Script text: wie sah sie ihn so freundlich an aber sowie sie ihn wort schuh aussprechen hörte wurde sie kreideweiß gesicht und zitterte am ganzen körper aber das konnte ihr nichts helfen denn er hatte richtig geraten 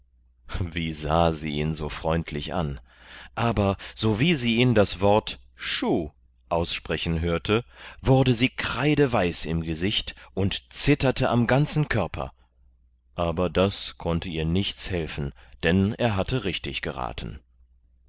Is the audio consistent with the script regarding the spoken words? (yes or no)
no